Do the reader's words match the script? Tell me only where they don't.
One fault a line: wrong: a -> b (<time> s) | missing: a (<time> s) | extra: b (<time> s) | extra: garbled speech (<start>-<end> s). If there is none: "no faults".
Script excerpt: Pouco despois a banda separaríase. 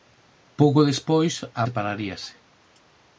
missing: banda (1.6 s)